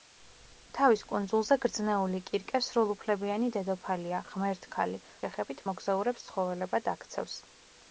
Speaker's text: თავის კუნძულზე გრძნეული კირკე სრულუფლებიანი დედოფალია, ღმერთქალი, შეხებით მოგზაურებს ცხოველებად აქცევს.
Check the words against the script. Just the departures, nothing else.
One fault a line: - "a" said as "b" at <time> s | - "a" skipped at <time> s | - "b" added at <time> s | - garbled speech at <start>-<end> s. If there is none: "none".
none